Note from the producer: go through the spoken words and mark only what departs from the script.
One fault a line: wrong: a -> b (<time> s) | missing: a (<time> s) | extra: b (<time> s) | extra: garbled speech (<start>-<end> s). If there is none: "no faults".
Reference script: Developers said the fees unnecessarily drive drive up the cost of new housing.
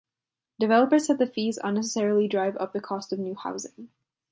missing: drive (2.6 s)